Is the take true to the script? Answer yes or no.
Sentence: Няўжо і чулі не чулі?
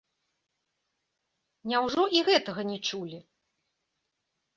no